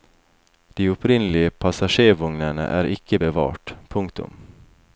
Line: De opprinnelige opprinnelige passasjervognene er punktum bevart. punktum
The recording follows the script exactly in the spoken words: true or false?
false